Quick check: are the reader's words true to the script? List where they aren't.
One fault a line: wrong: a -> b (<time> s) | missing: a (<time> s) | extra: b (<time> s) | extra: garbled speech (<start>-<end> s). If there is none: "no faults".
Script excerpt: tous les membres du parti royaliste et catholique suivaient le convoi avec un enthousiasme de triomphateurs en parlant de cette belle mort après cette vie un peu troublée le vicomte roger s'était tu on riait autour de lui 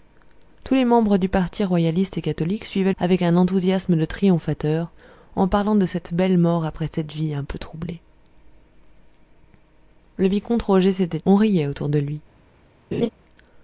missing: le convoi (2.9 s)
missing: tu (11.2 s)